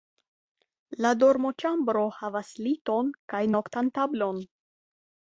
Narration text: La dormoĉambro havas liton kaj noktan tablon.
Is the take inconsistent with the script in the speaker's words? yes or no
no